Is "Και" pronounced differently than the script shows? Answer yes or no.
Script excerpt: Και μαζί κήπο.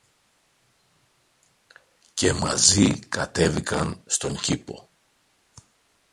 no